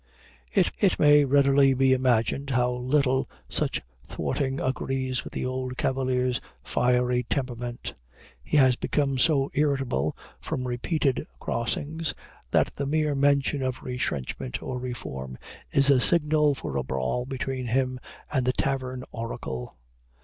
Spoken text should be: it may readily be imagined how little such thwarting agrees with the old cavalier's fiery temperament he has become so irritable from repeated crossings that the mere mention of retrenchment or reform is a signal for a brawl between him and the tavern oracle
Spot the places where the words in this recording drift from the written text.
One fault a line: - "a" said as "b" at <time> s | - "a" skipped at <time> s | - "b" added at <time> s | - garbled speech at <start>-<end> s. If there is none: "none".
- "it" added at 0.8 s